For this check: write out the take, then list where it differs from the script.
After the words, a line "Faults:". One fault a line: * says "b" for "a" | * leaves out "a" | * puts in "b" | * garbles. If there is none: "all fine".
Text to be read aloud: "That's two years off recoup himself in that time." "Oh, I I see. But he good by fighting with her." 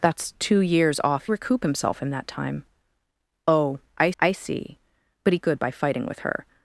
"That's two years off recoup himself in that time." "Oh, I I see. But he good by fighting with her."
Faults:
all fine